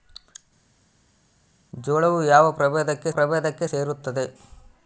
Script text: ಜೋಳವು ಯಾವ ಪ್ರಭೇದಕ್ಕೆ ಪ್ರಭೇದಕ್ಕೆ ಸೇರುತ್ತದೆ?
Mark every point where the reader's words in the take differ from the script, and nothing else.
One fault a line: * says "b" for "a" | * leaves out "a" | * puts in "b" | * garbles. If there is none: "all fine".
all fine